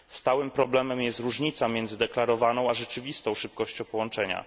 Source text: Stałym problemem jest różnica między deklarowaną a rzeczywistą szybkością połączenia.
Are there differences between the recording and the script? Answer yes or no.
no